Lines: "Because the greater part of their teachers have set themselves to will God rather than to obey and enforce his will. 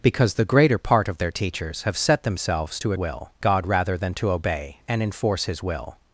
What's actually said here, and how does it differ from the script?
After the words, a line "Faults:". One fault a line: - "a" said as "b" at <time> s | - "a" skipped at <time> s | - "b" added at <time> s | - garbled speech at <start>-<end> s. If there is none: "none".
"Because the greater part of their teachers have set themselves to will God rather than to obey and enforce his will.
Faults:
none